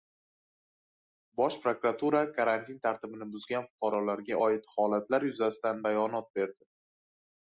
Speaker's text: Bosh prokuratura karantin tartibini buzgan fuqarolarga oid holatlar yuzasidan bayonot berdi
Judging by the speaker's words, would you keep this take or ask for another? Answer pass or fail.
pass